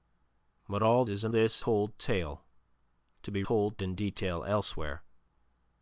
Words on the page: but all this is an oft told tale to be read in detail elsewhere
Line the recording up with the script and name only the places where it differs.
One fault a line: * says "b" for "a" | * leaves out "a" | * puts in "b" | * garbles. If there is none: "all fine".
* leaves out "this"
* says "this" for "oft"
* says "told" for "read"